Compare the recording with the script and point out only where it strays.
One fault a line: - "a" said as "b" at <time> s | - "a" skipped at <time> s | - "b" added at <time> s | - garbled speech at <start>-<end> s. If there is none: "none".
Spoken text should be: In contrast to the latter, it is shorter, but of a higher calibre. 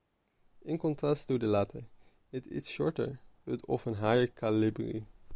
none